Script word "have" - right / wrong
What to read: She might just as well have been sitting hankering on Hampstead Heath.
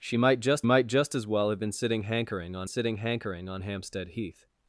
right